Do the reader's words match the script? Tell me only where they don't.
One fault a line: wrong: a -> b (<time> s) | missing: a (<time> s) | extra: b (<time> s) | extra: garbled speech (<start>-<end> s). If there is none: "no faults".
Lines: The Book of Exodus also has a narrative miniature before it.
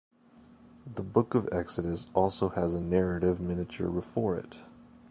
no faults